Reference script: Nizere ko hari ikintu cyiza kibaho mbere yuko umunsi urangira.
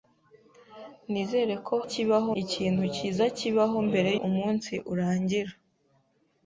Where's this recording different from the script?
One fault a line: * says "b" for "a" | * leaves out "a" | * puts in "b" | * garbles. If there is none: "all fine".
* says "kibaho" for "hari"
* leaves out "yuko"